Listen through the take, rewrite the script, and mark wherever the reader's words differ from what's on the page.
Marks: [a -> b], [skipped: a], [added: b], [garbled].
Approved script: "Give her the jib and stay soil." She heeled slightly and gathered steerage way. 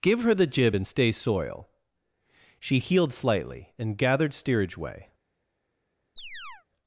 "Give her the jib and stay soil." She heeled slightly and gathered steerage way.